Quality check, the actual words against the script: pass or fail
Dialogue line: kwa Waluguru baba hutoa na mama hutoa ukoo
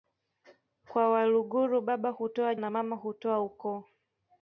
pass